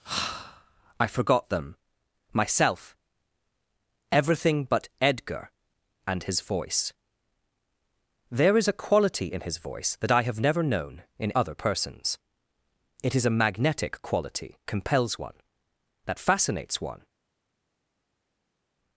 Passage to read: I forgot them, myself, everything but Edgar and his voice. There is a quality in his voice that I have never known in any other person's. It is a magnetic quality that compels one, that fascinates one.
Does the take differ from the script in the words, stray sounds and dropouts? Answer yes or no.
yes